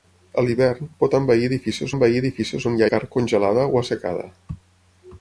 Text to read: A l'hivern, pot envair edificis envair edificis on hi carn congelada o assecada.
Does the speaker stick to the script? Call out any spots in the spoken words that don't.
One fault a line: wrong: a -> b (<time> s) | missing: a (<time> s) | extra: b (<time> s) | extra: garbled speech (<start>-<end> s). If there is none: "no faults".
no faults